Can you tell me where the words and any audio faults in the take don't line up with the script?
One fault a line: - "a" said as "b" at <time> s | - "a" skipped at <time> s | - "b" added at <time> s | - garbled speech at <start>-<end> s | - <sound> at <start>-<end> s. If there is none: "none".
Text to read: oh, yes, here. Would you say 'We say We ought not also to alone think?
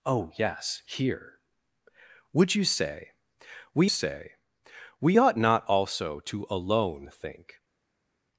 none